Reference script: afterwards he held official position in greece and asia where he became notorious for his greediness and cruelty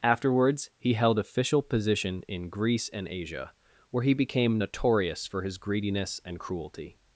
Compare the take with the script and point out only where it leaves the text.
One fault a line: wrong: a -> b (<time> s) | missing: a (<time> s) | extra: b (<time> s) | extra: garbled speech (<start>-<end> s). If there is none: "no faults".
no faults